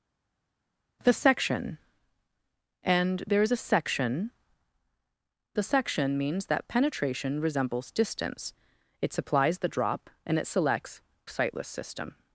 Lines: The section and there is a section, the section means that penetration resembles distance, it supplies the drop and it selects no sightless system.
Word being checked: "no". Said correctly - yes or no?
no